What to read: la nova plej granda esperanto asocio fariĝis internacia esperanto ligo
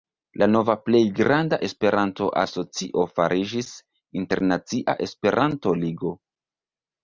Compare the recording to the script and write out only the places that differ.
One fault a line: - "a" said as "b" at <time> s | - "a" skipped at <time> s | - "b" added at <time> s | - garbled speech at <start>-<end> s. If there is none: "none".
none